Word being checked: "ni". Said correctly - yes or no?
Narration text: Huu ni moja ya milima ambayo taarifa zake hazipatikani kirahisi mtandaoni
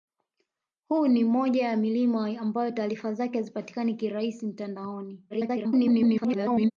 yes